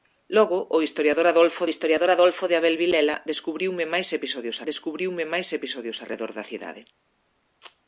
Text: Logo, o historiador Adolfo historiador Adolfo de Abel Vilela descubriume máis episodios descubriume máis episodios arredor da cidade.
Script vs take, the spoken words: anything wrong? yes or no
no